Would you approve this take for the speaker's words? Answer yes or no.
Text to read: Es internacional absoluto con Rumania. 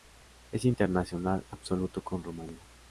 yes